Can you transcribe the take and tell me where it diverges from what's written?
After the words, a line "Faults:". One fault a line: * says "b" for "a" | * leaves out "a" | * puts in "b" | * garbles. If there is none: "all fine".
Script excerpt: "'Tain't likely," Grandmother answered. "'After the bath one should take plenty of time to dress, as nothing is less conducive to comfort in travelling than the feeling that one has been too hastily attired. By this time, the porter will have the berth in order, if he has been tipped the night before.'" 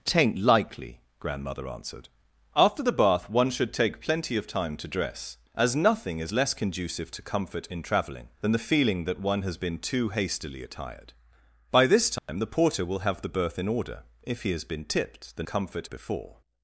"'Tain't likely," Grandmother answered. "'After the bath one should take plenty of time to dress, as nothing is less conducive to comfort in travelling than the feeling that one has been too hastily attired. By this time, the porter will have the berth in order, if he has been tipped the comfort before.'"
Faults:
* says "comfort" for "night"